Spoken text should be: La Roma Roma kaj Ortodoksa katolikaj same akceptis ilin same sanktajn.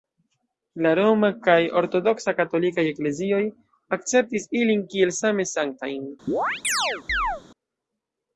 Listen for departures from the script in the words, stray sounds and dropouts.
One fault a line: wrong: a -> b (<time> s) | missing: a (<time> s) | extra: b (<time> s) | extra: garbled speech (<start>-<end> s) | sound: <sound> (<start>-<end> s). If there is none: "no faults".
missing: Roma (1.3 s)
wrong: same -> eklezioj (2.9 s)
extra: kiel (5.0 s)
sound: chirp (6.3-7.4 s)